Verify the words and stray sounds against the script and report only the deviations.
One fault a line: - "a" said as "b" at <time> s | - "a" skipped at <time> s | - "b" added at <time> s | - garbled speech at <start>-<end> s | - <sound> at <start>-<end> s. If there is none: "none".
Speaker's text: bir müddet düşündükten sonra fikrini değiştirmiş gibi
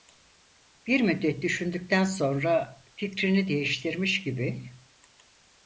none